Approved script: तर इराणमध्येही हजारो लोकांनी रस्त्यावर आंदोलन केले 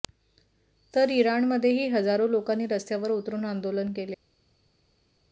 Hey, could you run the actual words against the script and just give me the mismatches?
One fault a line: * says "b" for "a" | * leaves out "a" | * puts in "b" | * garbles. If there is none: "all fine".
* puts in "उतरून"